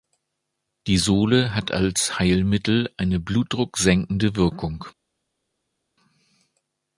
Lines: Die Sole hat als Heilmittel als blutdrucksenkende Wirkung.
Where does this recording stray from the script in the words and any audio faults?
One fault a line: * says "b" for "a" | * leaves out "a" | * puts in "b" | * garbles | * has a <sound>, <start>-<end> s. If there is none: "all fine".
* says "eine" for "als"